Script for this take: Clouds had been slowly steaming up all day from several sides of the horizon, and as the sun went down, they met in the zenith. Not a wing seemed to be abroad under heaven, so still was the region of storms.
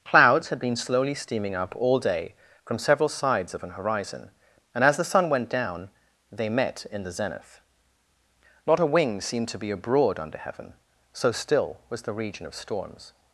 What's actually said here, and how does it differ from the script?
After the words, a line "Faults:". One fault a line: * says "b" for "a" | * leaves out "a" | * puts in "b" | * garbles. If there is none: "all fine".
Clouds had been slowly steaming up all day from several sides of an horizon, and as the sun went down, they met in the zenith. Not a wing seemed to be abroad under heaven, so still was the region of storms.
Faults:
* says "an" for "the"